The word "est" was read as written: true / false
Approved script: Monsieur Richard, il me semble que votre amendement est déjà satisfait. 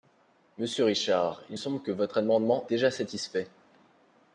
false